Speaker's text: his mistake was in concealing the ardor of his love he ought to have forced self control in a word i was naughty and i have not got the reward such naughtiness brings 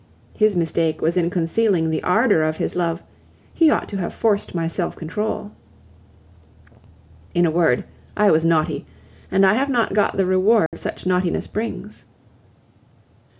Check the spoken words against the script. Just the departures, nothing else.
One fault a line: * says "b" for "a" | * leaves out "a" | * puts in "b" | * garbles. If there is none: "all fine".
* puts in "my"